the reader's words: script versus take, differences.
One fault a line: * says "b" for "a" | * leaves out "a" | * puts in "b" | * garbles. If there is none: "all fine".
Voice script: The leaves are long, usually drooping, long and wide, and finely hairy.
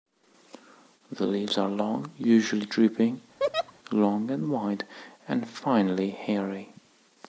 all fine